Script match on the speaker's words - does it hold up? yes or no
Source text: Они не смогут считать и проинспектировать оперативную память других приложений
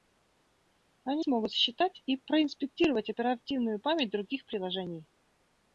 no